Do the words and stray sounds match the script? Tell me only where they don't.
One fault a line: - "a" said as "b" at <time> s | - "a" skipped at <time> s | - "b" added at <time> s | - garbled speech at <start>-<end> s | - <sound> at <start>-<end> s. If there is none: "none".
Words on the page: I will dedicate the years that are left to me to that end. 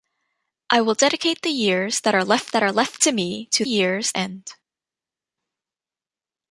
- "that are left" added at 2.5 s
- "that" said as "years" at 3.6 s